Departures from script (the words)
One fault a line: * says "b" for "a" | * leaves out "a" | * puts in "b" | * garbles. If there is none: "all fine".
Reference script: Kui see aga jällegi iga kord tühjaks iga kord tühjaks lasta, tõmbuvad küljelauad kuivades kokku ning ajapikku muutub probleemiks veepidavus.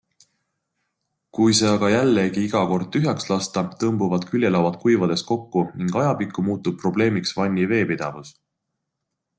* leaves out "iga kord tühjaks"
* puts in "vanni"